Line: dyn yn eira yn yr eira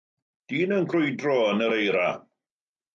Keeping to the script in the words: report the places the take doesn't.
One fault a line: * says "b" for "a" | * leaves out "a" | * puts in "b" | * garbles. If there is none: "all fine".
* says "crwydro" for "eira"